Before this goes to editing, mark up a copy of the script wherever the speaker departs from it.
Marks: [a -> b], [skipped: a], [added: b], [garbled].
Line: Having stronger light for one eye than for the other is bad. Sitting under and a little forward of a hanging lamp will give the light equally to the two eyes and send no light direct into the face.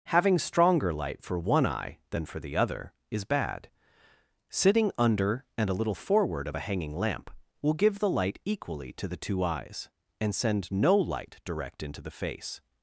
Having stronger light for one eye than for the other is bad. Sitting under and a little forward of a hanging lamp will give the light equally to the two eyes and send no light direct into the face.